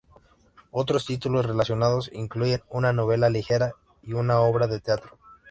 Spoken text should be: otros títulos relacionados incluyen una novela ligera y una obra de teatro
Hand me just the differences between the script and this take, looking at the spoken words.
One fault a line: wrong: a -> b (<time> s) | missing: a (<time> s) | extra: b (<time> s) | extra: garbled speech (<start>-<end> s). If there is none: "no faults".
no faults